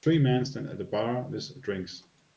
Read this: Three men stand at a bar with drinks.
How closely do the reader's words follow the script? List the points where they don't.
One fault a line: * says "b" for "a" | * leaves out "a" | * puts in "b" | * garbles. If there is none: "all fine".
all fine